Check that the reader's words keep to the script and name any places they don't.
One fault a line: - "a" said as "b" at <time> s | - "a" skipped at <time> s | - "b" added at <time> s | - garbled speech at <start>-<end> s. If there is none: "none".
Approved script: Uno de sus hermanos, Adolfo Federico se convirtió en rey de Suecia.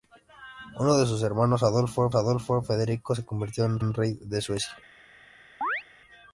- "Adolfo" added at 2.1 s
- "en" added at 3.8 s